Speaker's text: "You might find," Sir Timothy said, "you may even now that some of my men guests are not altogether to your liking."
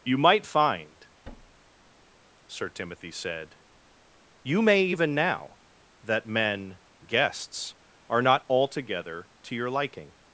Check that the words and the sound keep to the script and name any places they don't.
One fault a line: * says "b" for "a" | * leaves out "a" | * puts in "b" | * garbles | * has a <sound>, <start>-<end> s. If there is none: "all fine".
* has a thud, 1.2-2.2 s
* leaves out "some of my"